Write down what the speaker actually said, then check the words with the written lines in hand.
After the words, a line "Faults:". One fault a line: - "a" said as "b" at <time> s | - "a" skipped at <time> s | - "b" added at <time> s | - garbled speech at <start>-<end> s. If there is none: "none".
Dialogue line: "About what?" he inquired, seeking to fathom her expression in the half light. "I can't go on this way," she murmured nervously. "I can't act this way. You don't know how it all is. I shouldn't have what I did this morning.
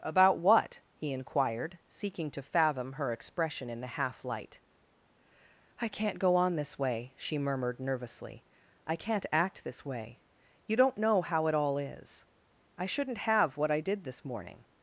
"About what?" he inquired, seeking to fathom her expression in the half light. "I can't go on this way," she murmured nervously. "I can't act this way. You don't know how it all is. I shouldn't have what I did this morning.
Faults:
none